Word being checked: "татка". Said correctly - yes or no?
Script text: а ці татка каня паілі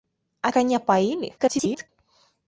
no